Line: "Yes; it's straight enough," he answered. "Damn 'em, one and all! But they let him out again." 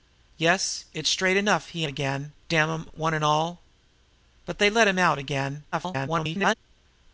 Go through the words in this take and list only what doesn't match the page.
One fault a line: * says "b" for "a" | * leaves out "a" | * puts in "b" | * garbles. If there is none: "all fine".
* says "again" for "answered"
* garbles